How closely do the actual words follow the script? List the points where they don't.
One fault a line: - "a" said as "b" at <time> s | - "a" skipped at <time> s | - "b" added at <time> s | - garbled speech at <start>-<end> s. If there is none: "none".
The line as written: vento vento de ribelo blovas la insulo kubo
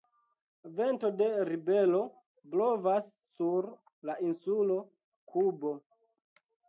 - "vento" skipped at 1.1 s
- "sur" added at 3.4 s